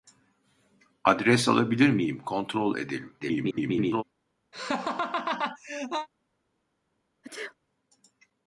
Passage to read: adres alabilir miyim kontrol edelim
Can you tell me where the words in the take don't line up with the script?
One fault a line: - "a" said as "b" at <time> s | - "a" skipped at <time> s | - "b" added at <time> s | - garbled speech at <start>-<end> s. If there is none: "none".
- garbled speech at 3.2-4.0 s